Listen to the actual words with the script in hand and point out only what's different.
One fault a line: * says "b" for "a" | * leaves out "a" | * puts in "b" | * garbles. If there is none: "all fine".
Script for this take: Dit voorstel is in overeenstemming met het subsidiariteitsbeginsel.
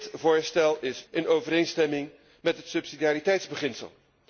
all fine